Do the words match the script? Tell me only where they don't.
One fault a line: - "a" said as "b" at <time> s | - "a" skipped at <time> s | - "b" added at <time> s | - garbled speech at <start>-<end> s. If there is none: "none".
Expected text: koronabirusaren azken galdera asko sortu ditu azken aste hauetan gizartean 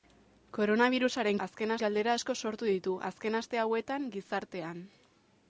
none